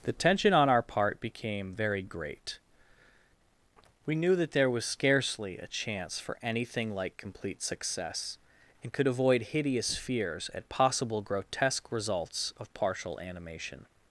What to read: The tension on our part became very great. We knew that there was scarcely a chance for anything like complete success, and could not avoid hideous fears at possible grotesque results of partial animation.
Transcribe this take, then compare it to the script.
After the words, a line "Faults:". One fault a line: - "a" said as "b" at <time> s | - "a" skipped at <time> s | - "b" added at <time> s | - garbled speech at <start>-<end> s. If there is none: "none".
The tension on our part became very great. We knew that there was scarcely a chance for anything like complete success, and could avoid hideous fears at possible grotesque results of partial animation.
Faults:
- "not" skipped at 9.1 s